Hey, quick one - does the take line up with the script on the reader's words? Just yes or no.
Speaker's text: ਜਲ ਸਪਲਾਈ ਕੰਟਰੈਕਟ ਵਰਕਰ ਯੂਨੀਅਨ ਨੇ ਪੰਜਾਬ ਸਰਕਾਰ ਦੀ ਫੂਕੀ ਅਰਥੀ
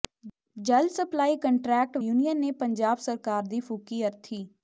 no